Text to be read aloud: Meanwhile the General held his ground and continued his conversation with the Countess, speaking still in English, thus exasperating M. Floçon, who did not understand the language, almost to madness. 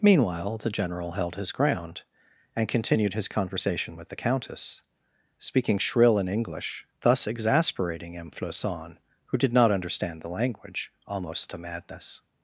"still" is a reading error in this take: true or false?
true